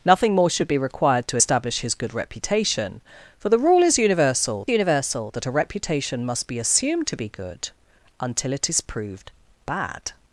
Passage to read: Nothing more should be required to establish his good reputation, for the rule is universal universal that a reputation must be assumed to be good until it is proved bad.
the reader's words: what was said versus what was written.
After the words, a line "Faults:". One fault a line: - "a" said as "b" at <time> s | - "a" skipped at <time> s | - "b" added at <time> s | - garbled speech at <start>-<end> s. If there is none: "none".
Nothing more should be required to establish his good reputation, for the rule is universal universal that a reputation must be assumed to be good until it is proved bad.
Faults:
none